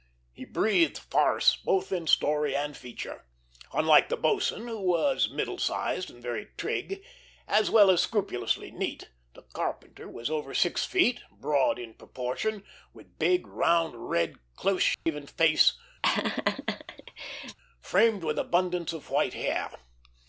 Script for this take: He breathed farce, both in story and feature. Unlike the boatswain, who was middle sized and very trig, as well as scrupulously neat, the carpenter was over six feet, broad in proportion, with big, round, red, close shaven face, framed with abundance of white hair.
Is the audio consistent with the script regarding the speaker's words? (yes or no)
yes